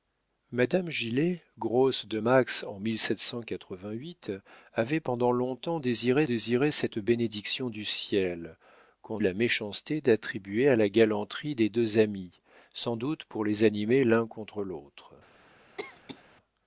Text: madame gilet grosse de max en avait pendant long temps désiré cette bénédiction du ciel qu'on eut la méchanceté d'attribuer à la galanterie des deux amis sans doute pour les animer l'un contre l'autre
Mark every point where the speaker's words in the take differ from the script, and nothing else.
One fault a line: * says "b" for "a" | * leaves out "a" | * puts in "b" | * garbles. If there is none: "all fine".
* puts in "désiré"
* leaves out "eut"